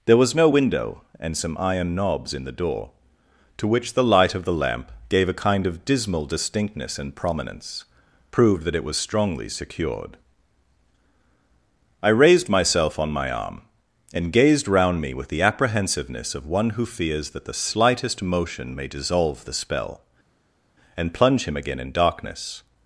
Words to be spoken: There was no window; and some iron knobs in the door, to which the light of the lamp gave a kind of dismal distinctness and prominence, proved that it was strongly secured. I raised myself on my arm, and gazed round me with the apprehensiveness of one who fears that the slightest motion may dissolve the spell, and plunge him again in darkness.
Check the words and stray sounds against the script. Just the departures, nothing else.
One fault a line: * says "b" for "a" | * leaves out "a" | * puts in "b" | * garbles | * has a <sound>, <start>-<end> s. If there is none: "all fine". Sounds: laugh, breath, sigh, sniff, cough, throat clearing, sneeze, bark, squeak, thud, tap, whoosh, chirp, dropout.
all fine